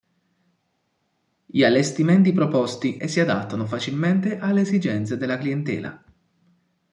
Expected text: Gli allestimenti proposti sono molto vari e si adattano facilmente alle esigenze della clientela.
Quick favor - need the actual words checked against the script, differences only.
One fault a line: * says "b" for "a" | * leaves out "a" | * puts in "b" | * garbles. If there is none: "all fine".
* leaves out "sono molto vari"